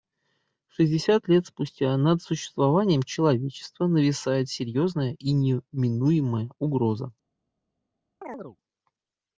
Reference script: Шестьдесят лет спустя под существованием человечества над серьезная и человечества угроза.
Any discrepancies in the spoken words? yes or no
yes